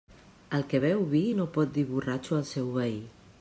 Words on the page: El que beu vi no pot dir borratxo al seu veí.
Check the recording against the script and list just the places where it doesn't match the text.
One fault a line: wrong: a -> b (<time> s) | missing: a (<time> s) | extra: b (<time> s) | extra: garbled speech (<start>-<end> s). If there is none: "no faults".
no faults